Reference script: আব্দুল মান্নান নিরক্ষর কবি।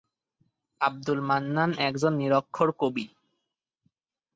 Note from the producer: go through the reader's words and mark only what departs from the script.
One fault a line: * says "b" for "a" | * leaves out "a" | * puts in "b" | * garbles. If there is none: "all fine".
* puts in "একজন"